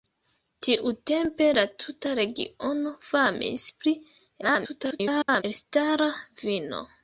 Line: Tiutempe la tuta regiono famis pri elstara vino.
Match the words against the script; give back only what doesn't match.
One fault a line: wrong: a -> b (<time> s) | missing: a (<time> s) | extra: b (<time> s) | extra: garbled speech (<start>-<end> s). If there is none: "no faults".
extra: garbled speech (4.4-5.4 s)